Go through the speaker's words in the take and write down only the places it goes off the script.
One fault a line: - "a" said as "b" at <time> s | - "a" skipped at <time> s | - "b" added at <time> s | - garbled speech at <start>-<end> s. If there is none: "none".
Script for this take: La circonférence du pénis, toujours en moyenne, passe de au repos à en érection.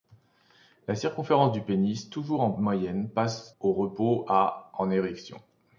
- "de" skipped at 3.5 s